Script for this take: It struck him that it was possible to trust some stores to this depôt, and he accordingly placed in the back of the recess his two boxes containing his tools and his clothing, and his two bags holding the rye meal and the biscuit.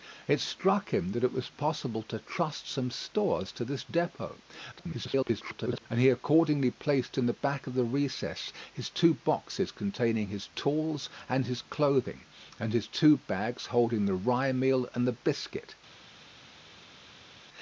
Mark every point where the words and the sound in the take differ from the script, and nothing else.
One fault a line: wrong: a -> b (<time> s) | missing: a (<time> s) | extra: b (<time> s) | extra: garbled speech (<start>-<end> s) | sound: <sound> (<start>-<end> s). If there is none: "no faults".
extra: garbled speech (4.7-5.9 s)